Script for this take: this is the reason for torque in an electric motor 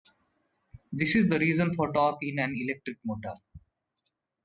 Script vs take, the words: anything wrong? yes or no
no